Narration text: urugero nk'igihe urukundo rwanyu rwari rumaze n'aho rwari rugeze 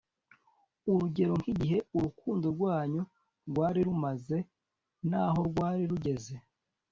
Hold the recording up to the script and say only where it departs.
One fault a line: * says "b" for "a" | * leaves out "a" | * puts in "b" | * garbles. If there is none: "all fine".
all fine